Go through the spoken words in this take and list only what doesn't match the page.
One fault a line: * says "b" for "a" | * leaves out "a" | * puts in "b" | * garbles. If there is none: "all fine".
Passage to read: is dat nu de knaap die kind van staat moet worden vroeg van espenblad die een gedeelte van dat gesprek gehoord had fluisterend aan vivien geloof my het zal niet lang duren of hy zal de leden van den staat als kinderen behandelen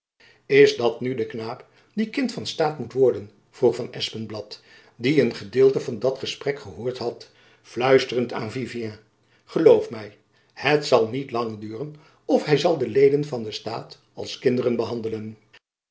all fine